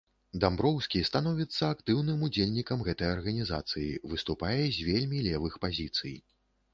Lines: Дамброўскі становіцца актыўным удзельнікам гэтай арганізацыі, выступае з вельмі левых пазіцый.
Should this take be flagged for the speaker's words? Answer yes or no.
no